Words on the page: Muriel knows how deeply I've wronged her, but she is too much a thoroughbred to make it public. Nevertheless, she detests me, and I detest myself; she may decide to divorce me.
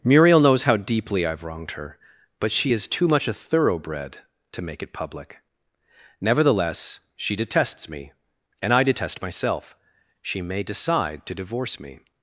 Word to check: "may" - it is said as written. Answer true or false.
true